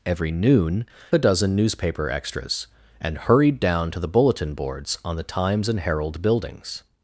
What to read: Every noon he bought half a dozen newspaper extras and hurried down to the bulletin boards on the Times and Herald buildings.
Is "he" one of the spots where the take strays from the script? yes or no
yes